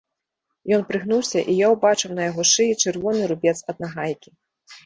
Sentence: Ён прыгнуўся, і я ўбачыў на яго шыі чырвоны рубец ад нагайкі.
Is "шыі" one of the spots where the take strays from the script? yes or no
no